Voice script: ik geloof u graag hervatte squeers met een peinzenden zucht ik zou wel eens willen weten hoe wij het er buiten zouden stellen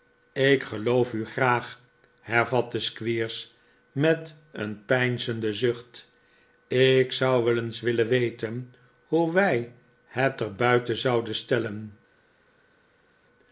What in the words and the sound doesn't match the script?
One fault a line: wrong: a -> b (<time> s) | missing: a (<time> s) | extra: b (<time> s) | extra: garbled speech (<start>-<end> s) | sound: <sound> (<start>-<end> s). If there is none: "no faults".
no faults